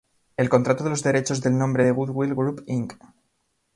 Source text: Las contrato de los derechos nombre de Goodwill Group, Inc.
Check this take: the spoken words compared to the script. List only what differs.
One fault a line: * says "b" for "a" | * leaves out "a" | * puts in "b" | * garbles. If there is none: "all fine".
* says "El" for "Las"
* puts in "del"